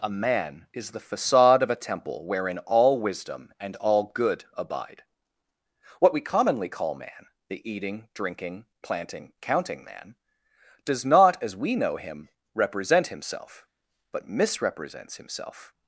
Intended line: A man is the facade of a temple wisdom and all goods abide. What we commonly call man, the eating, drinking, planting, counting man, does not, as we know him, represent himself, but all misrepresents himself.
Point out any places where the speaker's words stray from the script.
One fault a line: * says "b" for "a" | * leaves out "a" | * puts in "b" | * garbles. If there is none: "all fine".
* puts in "wherein all"
* says "good" for "goods"
* leaves out "all"